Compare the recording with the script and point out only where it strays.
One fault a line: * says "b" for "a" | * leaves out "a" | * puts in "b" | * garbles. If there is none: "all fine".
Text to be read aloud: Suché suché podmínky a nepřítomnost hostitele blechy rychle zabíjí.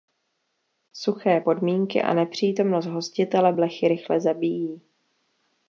* leaves out "suché"